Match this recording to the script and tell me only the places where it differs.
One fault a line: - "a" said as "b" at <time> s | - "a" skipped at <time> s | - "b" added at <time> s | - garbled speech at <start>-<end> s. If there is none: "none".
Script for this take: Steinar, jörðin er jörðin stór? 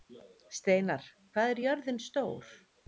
- "jörðin" said as "hvað" at 1.4 s